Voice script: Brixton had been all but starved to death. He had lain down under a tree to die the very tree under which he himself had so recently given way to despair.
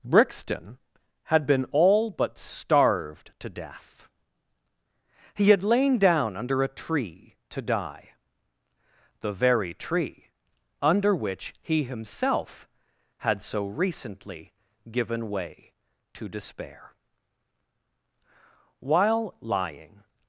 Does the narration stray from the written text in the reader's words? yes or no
yes